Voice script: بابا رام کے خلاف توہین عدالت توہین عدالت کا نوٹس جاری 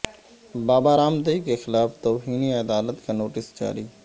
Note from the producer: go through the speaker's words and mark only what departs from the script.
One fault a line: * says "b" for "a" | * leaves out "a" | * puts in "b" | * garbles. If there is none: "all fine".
* puts in "دیو"
* leaves out "توہین عدالت"